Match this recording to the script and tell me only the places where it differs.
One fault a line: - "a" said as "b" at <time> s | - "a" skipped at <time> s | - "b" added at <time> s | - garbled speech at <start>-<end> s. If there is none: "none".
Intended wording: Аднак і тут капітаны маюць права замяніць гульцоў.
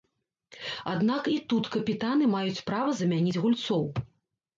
none